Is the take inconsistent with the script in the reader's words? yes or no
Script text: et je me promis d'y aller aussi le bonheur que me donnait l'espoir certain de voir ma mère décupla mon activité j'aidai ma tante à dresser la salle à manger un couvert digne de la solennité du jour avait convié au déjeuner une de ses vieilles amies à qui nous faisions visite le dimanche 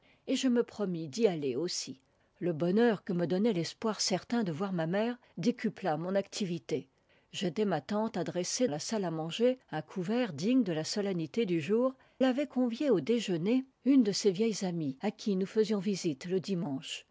no